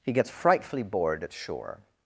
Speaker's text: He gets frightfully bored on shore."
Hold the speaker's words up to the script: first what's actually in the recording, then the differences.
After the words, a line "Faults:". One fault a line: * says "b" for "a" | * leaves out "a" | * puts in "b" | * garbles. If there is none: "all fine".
He gets frightfully bored at shore."
Faults:
* says "at" for "on"